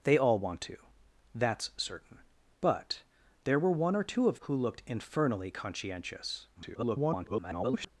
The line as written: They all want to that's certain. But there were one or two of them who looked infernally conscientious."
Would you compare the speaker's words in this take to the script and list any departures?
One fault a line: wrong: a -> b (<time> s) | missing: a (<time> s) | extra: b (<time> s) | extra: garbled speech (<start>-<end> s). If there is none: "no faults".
missing: them (4.4 s)
extra: garbled speech (6.5-7.9 s)